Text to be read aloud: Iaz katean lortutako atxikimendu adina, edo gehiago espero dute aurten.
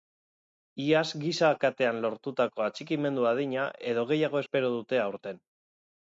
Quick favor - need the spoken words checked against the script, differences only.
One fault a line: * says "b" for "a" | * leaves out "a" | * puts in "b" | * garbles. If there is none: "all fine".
* puts in "giza"